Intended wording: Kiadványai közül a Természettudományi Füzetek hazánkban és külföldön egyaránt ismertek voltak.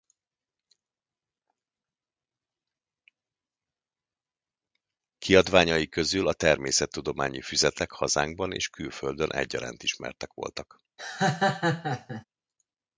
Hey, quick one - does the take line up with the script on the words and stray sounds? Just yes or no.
no